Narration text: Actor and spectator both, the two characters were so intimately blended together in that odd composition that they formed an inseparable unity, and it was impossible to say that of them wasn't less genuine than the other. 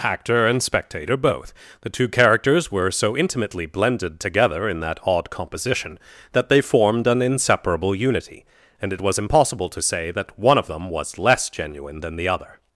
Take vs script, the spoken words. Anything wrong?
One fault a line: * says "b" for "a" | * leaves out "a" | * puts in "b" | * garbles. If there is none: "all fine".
* puts in "one"
* says "was" for "wasn't"